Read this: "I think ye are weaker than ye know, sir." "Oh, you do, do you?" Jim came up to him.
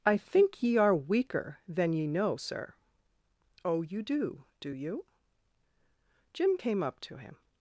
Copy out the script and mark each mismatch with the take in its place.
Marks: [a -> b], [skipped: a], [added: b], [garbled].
"I think ye are weaker than ye know, sir." "Oh, you do, do you?" Jim came up to him.